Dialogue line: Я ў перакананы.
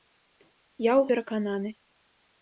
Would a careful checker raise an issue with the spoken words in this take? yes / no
no